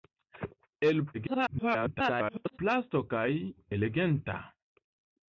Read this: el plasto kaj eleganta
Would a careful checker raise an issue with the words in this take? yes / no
yes